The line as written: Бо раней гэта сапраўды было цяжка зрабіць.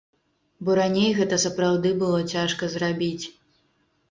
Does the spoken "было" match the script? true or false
true